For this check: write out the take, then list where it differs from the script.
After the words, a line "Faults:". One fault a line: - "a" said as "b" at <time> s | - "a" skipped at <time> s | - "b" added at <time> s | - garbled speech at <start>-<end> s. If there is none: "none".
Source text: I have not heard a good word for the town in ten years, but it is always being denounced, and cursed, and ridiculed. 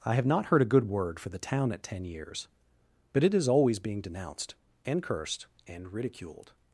I have not heard a good word for the town at ten years, but it is always being denounced, and cursed, and ridiculed.
Faults:
- "in" said as "at" at 1.7 s